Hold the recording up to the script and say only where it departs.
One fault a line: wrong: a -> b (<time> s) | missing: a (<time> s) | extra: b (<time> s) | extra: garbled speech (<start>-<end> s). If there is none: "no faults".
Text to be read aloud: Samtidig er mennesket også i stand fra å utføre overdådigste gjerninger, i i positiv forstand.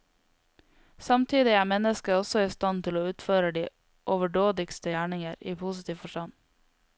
wrong: fra -> til (2.9 s)
extra: de (3.6 s)
missing: i (5.5 s)